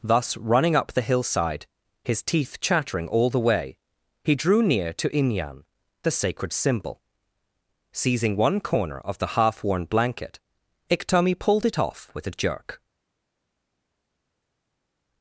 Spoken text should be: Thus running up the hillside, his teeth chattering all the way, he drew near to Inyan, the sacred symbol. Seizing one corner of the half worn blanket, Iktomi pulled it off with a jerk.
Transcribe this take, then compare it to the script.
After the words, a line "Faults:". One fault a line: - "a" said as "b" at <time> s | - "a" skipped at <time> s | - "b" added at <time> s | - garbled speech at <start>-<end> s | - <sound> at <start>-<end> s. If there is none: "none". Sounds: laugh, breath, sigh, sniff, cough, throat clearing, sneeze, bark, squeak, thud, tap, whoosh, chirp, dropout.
Thus running up the hillside, his teeth chattering all the way, he drew near to Inyan, the sacred symbol. Seizing one corner of the half worn blanket, Iktomi pulled it off with a jerk.
Faults:
none